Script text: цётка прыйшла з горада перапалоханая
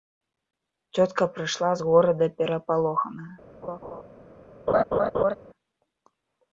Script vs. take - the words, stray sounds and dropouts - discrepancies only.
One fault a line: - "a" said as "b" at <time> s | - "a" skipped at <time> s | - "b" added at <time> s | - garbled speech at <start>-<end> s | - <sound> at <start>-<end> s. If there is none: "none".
- laugh at 3.6-4.0 s
- laugh at 4.7-5.4 s